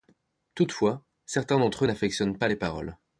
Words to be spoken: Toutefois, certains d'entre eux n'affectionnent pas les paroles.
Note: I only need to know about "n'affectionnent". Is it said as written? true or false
true